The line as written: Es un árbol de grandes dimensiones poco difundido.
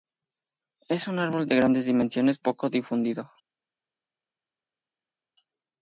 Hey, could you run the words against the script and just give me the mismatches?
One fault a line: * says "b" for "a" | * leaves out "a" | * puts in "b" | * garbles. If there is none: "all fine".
all fine